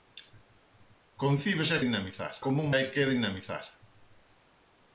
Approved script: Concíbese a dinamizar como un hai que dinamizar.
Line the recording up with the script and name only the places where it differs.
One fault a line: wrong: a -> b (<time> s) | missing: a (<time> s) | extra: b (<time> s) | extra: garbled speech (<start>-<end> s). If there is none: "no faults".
no faults